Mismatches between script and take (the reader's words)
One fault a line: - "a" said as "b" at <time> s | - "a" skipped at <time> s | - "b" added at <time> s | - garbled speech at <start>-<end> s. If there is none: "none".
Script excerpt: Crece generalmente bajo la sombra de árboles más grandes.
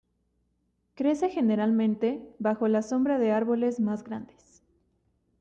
none